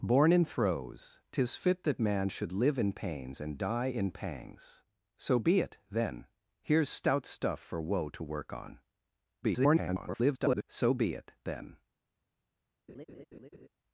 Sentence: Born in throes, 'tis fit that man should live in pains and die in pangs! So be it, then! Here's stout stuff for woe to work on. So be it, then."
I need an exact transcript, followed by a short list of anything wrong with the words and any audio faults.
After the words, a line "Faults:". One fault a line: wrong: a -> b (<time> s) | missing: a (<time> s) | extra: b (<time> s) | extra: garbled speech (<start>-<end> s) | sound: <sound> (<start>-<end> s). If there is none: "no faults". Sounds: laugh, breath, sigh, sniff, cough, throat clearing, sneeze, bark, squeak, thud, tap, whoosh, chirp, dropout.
Born in throes, 'tis fit that man should live in pains and die in pangs! So be it, then! Here's stout stuff for woe to work on. [garbled] So be it, then."
Faults:
extra: garbled speech (9.4-10.6 s)
sound: laugh (12.9-13.7 s)